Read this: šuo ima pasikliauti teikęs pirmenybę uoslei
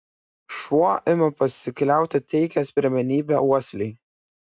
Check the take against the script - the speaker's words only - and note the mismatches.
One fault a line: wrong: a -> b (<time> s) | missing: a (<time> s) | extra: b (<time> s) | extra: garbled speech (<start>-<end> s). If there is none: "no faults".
no faults